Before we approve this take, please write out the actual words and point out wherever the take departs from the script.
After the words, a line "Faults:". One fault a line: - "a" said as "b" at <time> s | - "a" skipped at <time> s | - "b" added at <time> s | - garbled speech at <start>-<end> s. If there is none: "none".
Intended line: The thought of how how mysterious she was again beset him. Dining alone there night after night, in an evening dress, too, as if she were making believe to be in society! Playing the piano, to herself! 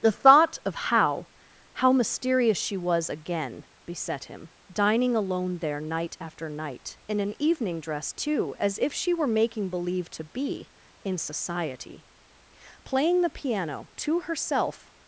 The thought of how how mysterious she was again beset him. Dining alone there night after night, in an evening dress, too, as if she were making believe to be in society! Playing the piano, to herself!
Faults:
none